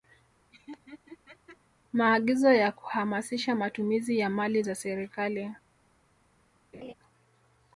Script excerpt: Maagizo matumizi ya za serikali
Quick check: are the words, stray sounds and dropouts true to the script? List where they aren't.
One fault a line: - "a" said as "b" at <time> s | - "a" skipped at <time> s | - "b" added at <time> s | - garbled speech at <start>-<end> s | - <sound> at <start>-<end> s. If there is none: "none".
- laugh at 0.5-1.6 s
- "ya kuhamasisha" added at 2.5 s
- "mali" added at 4.3 s
- laugh at 6.7-6.9 s